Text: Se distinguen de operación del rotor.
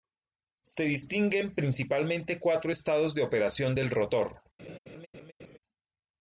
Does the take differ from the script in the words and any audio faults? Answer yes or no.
yes